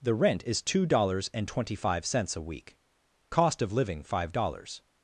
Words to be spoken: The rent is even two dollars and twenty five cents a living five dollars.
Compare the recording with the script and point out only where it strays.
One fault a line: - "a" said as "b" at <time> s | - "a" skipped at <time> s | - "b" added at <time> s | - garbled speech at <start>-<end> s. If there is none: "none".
- "even" skipped at 0.6 s
- "week cost of" added at 2.4 s